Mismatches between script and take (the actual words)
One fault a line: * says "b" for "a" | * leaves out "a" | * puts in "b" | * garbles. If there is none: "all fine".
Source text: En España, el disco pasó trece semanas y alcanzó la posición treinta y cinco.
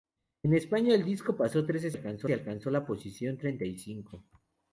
* says "alcanzó" for "semanas"